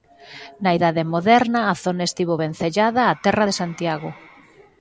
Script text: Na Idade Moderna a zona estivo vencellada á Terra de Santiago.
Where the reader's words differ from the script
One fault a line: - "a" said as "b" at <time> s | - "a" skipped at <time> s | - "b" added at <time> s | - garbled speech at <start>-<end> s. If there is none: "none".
none